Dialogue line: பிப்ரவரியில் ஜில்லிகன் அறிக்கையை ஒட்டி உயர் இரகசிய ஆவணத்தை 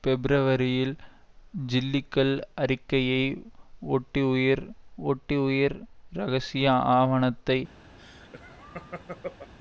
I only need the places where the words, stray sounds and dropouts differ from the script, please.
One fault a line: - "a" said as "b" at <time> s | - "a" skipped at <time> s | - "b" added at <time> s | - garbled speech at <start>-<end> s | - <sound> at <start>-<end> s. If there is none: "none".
- "ஒட்டி உயர்" added at 5.0 s
- laugh at 8.0-9.5 s